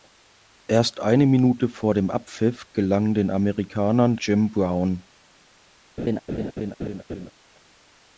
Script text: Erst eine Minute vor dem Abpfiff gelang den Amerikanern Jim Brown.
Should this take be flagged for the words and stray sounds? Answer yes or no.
yes